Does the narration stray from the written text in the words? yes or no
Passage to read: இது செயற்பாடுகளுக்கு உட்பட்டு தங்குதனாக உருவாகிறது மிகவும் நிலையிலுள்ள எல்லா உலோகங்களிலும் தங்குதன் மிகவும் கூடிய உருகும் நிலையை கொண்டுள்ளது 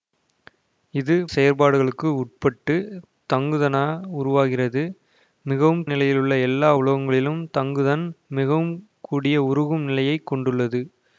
no